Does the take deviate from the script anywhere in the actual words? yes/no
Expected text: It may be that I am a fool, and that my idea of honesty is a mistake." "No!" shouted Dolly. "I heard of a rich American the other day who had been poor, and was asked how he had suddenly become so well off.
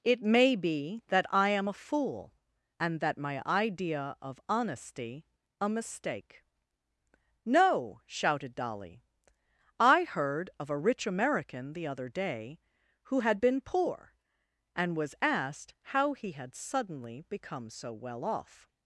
yes